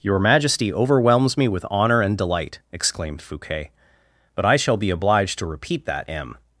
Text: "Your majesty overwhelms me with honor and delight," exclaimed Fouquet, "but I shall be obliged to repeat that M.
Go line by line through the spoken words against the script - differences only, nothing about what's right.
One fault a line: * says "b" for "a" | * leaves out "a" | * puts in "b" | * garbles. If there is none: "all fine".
all fine